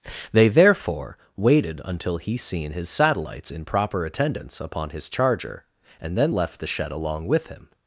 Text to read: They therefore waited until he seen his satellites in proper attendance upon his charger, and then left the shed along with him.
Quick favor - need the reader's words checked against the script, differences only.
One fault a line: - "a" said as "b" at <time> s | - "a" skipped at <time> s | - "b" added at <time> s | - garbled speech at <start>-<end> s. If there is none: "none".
none